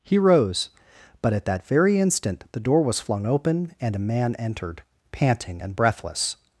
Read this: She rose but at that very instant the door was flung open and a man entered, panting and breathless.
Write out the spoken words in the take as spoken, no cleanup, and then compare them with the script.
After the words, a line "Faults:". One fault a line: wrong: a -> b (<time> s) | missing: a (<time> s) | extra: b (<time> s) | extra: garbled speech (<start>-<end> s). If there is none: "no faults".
He rose but at that very instant the door was flung open and a man entered, panting and breathless.
Faults:
wrong: She -> He (0.0 s)